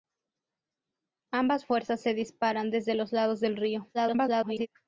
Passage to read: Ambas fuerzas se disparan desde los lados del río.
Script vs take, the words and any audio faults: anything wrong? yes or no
yes